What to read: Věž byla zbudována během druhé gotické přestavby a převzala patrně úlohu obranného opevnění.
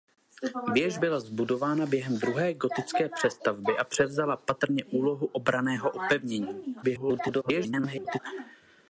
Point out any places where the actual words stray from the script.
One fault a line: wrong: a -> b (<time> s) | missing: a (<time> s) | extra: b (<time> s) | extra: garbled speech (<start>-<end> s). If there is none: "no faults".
extra: garbled speech (6.8-8.2 s)